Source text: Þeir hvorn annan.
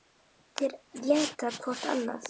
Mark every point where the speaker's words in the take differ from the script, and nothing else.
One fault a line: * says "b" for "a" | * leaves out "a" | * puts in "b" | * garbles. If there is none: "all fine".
* puts in "éta"